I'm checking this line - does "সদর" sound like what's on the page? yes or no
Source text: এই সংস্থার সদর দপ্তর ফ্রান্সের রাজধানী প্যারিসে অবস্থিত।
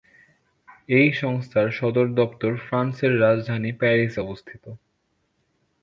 yes